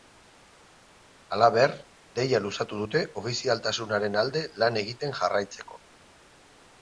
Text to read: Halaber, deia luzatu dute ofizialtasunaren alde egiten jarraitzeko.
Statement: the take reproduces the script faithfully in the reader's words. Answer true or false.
false